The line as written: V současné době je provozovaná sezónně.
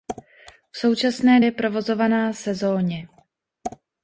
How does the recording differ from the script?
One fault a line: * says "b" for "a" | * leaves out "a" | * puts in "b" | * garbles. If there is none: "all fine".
* leaves out "době"